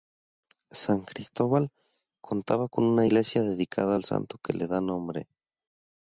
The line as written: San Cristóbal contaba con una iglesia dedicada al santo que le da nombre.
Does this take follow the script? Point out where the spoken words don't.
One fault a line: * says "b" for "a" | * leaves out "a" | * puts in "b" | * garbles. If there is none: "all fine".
all fine